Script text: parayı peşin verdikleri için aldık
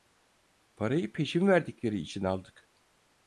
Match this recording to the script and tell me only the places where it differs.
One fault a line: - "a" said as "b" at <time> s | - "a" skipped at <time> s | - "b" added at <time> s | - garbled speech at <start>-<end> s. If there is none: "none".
none